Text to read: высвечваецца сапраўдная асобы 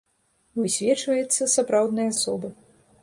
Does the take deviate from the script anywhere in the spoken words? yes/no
no